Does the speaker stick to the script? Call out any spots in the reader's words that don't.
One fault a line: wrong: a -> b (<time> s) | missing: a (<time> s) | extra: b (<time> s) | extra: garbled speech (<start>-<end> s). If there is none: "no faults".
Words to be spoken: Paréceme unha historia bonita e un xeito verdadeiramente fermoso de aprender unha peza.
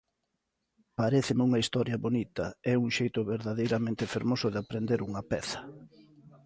no faults